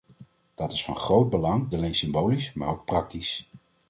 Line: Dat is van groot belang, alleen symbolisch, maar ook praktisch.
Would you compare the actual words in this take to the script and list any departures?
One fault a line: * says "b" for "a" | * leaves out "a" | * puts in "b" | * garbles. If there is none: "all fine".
all fine